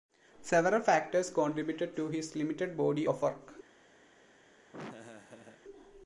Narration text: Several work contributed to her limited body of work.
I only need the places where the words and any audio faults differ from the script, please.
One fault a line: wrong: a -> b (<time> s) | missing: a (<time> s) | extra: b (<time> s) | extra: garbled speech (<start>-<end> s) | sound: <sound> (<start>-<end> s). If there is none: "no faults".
wrong: work -> factors (0.8 s)
wrong: her -> his (2.1 s)
sound: laugh (4.7-5.6 s)